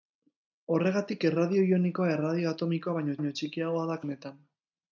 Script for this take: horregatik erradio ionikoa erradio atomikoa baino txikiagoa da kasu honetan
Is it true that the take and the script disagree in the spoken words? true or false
true